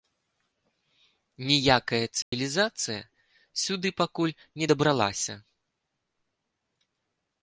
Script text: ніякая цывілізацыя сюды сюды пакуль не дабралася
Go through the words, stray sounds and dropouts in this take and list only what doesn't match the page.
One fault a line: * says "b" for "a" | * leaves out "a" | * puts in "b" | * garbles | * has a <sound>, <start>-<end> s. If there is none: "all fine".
* has a dropout, 2.2-2.3 s
* leaves out "сюды"